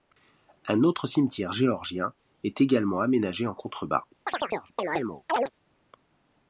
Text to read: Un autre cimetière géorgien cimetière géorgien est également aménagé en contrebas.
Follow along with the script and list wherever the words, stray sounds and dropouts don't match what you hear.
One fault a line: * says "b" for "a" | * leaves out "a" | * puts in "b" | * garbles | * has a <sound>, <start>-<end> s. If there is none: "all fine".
* leaves out "cimetière géorgien"
* has a chirp, 4.3-5.5 s